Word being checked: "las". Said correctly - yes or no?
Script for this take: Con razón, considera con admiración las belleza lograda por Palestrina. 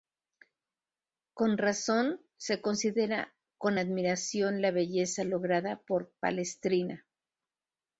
no